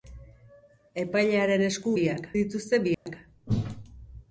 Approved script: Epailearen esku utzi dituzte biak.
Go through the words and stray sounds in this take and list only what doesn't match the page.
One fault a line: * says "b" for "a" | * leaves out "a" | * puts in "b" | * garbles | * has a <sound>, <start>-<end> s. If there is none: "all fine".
* says "biak" for "utzi"
* has a dropout, 2.9-3.1 s